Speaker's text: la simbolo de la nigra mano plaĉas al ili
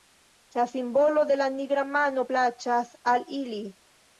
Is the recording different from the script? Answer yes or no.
no